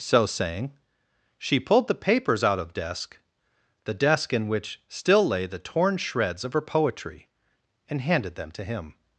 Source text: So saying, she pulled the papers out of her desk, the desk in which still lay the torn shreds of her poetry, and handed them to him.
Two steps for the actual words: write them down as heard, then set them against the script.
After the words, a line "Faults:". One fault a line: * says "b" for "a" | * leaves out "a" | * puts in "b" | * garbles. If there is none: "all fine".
So saying, she pulled the papers out of desk, the desk in which still lay the torn shreds of her poetry, and handed them to him.
Faults:
* leaves out "her"